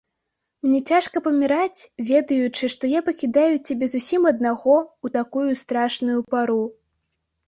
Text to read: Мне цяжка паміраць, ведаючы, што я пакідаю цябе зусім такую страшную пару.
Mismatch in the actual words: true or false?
true